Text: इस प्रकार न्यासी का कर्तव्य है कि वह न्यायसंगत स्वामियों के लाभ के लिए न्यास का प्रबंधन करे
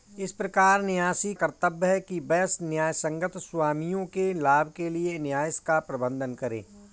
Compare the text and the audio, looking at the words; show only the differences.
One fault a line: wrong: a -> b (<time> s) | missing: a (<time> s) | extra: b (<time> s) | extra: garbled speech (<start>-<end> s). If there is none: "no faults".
missing: का (1.3 s)